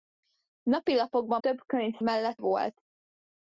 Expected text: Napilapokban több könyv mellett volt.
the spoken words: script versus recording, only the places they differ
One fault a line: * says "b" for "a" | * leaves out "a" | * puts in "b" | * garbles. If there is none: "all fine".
all fine